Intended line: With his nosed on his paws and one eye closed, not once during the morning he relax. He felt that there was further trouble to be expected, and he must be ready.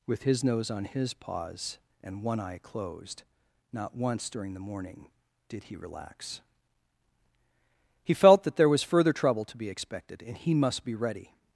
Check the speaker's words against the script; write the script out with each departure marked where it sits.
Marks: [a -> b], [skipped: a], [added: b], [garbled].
With his [nosed -> nose] on his paws and one eye closed, not once during the morning [added: did] he relax. He felt that there was further trouble to be expected, and he must be ready.